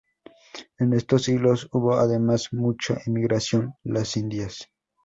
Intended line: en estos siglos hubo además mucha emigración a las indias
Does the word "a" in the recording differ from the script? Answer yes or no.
yes